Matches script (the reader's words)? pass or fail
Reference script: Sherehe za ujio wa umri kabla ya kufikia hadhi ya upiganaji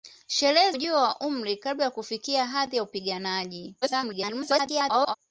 fail